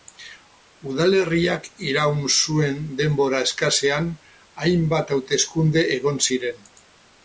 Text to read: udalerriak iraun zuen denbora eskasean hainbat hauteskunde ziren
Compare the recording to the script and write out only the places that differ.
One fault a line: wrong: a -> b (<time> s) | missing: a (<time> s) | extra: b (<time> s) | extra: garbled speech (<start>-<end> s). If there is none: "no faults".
extra: egon (6.0 s)